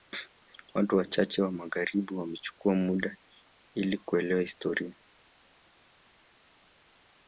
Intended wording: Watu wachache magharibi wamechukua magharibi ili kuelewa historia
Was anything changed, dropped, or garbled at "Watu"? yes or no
no